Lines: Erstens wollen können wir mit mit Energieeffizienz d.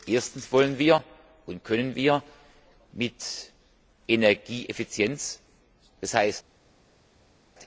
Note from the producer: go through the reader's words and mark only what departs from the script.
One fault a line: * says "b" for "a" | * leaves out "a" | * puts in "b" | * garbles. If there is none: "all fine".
* puts in "und"
* leaves out "mit"